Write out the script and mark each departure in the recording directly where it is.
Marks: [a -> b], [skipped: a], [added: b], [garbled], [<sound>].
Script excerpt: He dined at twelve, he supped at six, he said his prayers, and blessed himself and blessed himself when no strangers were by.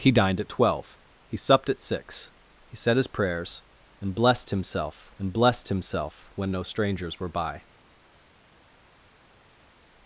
He dined at twelve, he supped at six, he said his prayers, and blessed himself and blessed himself when no strangers were by.